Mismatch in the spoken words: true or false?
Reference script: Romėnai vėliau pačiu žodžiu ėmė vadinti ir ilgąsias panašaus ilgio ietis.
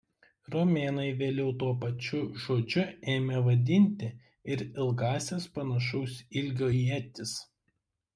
true